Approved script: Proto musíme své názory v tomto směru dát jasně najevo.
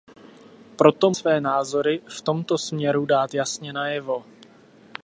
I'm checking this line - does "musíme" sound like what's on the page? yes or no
no